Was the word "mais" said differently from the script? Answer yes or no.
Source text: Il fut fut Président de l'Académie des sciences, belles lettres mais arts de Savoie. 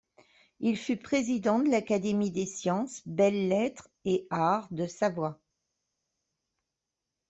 yes